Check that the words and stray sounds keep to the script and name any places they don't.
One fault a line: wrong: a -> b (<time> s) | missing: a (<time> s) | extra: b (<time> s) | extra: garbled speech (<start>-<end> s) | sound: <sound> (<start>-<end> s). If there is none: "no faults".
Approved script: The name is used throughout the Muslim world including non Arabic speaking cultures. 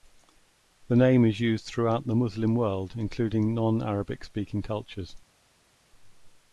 no faults